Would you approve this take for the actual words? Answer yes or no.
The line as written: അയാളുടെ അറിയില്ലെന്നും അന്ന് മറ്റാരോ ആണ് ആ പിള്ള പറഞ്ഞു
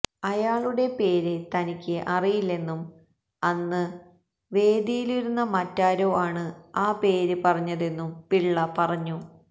no